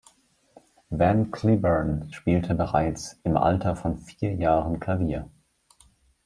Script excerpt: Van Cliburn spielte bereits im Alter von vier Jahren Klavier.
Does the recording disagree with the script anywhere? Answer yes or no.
no